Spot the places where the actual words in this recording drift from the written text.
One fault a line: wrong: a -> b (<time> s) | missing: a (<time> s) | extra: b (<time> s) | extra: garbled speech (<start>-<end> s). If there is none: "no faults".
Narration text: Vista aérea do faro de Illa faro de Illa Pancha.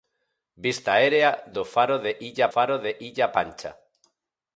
no faults